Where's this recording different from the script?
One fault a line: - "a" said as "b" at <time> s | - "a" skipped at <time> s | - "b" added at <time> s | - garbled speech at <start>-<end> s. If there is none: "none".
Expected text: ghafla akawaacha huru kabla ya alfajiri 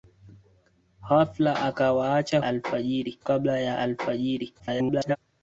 - "huru" said as "alfajiri" at 2.4 s
- garbled speech at 4.6-5.2 s